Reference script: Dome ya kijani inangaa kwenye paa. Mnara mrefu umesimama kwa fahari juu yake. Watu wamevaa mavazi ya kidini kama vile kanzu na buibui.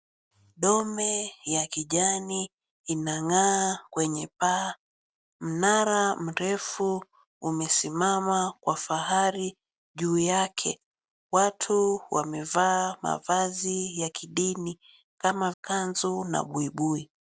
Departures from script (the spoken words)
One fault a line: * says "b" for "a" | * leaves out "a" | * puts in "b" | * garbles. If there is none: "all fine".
* leaves out "vile"